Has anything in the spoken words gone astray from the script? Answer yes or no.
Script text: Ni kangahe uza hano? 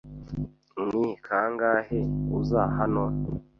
no